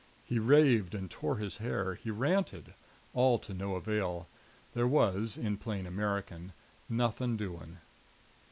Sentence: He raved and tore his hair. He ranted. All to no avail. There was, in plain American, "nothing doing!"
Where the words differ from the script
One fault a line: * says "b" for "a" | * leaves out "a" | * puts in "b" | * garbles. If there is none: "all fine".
all fine